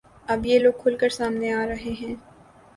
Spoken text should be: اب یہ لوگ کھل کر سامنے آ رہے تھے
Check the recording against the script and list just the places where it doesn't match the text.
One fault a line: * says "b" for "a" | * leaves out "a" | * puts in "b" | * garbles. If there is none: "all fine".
* says "ہیں" for "تھے"